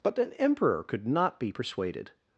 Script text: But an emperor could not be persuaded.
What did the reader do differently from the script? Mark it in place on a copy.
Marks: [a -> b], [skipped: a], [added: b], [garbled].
But an emperor could not be persuaded.